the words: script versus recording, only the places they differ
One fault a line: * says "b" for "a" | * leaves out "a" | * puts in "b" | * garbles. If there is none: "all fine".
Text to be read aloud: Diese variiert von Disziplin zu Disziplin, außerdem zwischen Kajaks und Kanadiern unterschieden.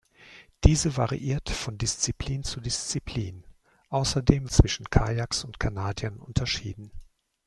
all fine